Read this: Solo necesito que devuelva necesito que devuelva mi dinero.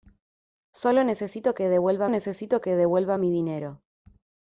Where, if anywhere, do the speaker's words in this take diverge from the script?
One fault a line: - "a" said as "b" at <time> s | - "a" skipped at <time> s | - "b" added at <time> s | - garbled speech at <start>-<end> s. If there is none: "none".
none